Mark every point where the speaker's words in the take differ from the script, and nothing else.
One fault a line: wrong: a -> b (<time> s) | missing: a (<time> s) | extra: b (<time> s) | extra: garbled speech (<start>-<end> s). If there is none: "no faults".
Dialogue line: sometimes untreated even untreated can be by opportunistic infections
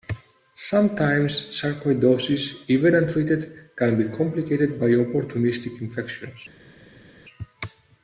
wrong: untreated -> sarcoidosis (1.5 s)
extra: complicated (4.2 s)